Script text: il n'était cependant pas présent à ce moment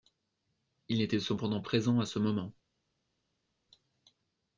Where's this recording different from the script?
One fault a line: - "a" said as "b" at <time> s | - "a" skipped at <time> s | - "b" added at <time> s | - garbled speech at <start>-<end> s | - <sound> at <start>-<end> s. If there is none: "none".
- "pas" skipped at 1.6 s